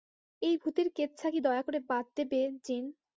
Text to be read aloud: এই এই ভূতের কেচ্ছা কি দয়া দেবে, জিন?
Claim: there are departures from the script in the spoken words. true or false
true